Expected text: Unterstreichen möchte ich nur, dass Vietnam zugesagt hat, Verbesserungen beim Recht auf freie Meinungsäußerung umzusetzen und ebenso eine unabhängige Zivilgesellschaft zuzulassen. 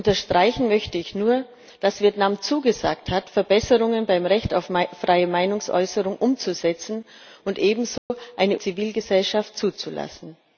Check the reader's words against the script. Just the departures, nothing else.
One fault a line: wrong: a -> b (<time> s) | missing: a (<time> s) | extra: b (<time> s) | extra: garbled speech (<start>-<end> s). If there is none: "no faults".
missing: unabhängige (8.6 s)